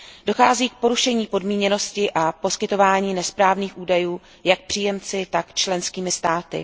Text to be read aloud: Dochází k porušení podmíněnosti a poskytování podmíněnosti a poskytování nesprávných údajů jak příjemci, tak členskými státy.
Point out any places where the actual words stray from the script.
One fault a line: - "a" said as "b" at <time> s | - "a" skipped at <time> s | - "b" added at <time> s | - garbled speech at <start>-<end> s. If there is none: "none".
- "podmíněnosti a poskytování" skipped at 3.1 s